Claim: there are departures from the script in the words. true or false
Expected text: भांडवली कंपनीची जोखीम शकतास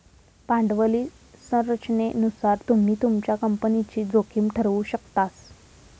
true